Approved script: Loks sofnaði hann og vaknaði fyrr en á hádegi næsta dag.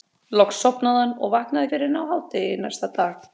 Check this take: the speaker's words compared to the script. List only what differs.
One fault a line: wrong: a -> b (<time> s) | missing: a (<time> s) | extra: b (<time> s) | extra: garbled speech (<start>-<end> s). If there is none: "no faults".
no faults